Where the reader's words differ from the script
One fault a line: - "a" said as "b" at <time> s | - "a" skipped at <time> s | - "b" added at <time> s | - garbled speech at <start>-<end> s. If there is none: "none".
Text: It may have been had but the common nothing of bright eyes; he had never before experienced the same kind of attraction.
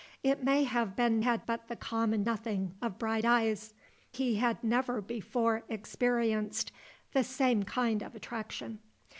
none